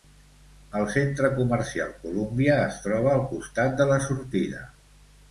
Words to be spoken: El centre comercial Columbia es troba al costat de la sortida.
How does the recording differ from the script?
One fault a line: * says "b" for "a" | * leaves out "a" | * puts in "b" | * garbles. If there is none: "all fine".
all fine